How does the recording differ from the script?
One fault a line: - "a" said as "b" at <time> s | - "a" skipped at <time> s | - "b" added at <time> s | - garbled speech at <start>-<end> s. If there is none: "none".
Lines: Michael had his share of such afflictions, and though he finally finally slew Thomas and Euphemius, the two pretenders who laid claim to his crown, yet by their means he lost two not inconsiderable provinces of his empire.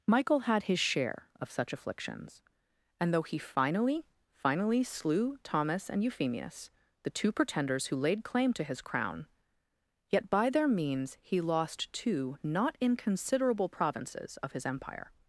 none